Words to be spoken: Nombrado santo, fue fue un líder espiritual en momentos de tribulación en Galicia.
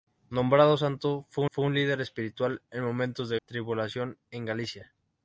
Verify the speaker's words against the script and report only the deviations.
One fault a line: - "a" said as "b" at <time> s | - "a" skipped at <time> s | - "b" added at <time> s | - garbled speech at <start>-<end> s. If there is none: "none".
none